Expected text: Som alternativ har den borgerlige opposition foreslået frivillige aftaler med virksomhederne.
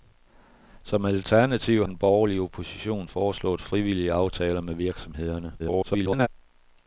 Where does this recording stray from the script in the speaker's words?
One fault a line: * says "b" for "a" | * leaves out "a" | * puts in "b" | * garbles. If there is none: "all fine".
* leaves out "har"
* garbles